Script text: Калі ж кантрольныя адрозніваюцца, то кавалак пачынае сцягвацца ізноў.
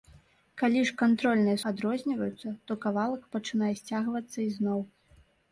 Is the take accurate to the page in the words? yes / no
yes